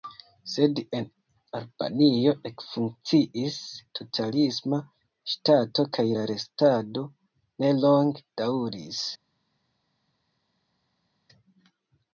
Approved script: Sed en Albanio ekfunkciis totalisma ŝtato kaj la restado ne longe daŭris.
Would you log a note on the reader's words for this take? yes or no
no